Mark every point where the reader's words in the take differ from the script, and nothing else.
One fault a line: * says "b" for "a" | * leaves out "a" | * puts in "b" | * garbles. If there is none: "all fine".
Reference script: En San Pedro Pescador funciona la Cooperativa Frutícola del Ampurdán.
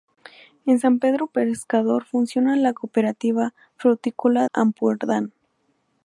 * leaves out "del"